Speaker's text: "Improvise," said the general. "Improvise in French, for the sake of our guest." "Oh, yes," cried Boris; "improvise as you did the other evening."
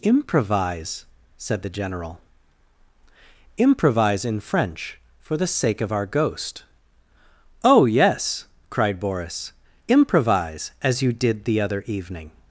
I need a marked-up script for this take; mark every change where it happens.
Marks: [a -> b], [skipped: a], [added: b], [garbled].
"Improvise," said the general. "Improvise in French, for the sake of our [guest." -> ghost] "Oh, yes," cried Boris; "improvise as you did the other evening."